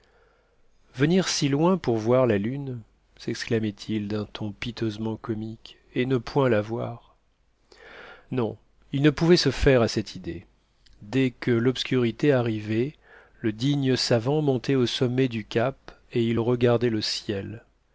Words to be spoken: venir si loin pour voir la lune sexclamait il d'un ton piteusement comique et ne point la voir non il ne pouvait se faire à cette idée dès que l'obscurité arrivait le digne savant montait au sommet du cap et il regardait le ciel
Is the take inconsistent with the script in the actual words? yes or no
no